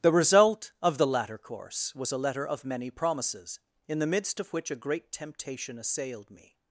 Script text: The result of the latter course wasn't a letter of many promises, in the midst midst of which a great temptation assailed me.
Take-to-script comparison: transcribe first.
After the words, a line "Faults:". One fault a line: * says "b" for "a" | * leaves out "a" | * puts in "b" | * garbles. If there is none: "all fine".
The result of the latter course was a letter of many promises, in the midst of which a great temptation assailed me.
Faults:
* says "was" for "wasn't"
* leaves out "midst"